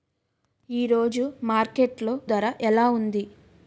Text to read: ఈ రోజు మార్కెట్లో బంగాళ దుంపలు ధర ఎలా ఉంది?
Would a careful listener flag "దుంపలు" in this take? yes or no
yes